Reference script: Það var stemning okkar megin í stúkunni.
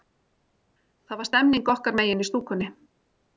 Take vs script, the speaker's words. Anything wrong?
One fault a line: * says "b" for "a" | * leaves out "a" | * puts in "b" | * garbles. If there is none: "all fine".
all fine